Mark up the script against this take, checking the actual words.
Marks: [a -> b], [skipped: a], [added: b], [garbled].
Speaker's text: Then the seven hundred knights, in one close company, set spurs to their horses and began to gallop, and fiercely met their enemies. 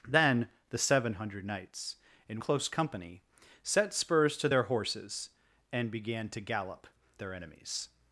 Then the seven hundred knights, in [skipped: one] close company, set spurs to their horses and began to gallop, [skipped: and fiercely met] their enemies.